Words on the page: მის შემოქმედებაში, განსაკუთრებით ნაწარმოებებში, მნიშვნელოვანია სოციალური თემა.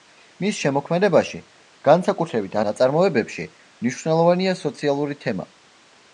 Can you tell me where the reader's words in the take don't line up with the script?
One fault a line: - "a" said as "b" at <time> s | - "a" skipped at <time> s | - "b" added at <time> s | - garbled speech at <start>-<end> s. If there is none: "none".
none